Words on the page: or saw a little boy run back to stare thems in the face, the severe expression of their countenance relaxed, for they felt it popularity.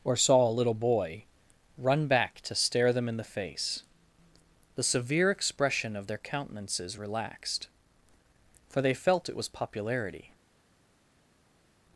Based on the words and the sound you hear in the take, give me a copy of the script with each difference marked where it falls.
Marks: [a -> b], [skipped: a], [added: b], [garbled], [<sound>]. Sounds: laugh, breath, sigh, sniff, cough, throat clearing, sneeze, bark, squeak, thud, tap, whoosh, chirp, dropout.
or saw a little boy run back to stare [thems -> them] in the face, the severe expression of their [countenance -> countenances] relaxed, for they felt it [added: was] popularity.